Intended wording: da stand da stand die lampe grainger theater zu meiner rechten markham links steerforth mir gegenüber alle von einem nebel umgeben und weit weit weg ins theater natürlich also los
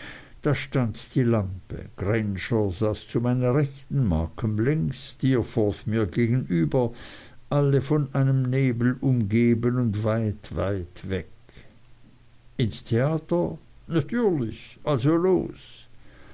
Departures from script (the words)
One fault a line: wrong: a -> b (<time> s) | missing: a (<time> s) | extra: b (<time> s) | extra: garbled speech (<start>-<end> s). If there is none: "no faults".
missing: da stand (0.9 s)
wrong: theater -> saß (2.7 s)